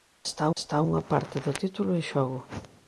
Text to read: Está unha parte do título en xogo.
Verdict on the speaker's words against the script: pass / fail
fail